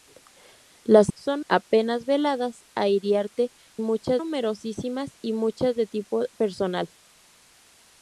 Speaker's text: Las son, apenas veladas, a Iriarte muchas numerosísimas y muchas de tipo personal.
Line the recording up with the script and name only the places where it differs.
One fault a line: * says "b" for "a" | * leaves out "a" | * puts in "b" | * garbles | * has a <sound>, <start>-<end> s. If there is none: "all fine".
all fine